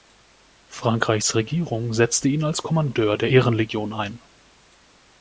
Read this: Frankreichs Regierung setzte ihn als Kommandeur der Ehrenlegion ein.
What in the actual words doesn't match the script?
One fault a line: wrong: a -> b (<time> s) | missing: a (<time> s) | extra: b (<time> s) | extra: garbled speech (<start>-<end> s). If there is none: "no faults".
no faults